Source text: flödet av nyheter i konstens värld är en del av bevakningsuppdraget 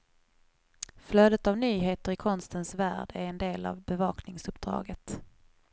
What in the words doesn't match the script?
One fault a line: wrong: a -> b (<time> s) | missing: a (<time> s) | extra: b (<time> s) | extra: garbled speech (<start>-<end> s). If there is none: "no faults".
no faults